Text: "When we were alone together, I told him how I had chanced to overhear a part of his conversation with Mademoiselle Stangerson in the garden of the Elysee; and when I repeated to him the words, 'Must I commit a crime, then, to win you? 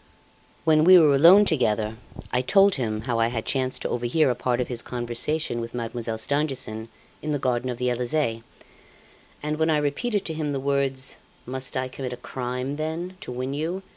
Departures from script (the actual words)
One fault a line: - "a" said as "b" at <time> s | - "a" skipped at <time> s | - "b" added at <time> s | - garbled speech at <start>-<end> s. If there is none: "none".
none